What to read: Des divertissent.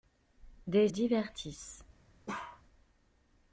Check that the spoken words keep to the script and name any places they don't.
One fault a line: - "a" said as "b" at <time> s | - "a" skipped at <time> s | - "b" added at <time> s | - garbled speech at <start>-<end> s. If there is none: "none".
none